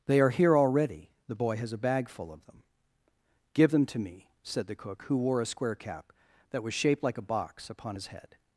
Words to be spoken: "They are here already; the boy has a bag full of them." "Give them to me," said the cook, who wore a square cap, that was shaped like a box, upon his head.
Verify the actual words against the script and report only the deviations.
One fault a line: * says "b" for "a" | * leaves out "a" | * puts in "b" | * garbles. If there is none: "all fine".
all fine